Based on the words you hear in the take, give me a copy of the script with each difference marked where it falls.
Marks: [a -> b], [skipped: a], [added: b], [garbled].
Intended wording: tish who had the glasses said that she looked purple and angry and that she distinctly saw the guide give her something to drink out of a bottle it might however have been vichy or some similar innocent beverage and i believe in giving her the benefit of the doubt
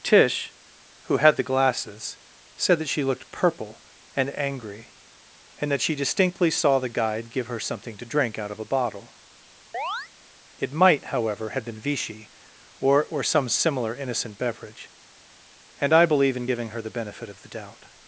tish who had the glasses said that she looked purple and angry and that she distinctly saw the guide give her something to drink out of a bottle it might however have been vichy or [added: or] some similar innocent beverage and i believe in giving her the benefit of the doubt